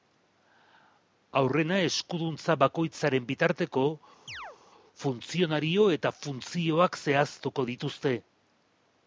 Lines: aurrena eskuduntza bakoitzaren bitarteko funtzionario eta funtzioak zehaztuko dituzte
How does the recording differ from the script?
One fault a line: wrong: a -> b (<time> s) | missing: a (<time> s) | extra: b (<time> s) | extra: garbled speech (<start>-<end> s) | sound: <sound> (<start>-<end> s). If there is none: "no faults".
sound: chirp (4.3-4.6 s)